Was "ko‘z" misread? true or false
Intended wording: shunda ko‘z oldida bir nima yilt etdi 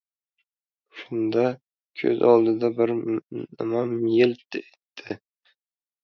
false